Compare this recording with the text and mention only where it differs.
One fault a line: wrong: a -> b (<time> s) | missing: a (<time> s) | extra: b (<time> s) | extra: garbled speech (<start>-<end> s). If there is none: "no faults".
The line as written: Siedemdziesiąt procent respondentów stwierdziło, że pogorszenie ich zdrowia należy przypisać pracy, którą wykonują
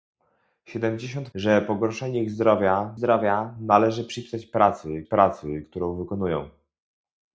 missing: procent respondentów stwierdziło (1.3 s)
extra: zdrowia (2.9 s)
extra: pracy (5.0 s)